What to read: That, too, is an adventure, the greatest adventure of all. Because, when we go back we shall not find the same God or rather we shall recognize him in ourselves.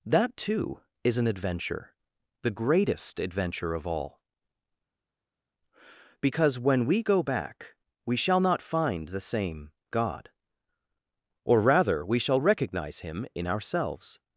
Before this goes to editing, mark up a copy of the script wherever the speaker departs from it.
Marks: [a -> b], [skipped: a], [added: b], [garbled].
That, too, is an adventure, the greatest adventure of all. Because, when we go back we shall not find the same God or rather we shall recognize him in ourselves.